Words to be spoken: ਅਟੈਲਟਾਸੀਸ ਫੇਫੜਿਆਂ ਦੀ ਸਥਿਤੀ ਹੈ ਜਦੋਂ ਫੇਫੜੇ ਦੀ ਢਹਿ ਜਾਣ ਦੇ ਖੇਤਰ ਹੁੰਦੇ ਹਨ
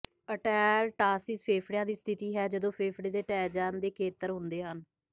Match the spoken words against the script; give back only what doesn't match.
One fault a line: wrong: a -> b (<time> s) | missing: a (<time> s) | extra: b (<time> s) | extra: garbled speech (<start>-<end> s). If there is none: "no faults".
wrong: ਦੀ -> ਦੇ (3.1 s)